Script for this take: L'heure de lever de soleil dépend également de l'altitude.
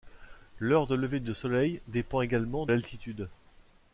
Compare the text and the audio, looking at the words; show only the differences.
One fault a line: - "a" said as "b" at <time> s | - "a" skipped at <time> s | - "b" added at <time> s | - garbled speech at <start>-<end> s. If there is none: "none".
- "de" skipped at 2.7 s